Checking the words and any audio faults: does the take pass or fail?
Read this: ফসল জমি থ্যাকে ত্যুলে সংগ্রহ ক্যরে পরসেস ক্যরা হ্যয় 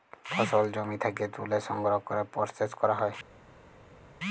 pass